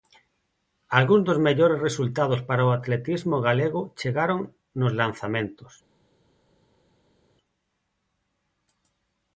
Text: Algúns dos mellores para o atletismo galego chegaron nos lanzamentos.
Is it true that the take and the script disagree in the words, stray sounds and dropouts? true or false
true